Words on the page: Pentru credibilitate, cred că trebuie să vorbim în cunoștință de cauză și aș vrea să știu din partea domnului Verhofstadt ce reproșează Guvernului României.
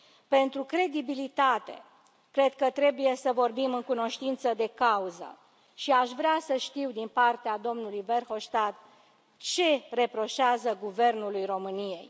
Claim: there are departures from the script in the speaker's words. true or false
false